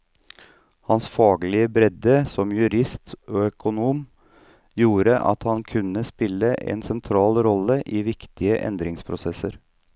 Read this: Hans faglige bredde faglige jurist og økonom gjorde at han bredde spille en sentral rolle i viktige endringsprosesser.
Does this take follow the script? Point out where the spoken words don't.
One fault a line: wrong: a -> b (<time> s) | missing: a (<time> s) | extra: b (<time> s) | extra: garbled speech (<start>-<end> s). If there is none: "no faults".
wrong: faglige -> som (2.3 s)
wrong: bredde -> kunne (5.7 s)